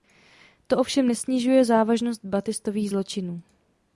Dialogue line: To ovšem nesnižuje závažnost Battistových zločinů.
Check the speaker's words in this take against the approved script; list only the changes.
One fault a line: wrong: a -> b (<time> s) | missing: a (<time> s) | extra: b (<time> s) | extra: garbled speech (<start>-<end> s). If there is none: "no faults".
no faults